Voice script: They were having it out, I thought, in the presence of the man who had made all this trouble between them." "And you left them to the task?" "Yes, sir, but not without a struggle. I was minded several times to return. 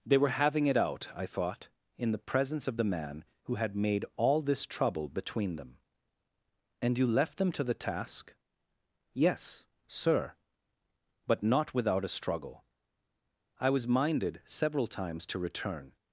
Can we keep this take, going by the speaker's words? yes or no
yes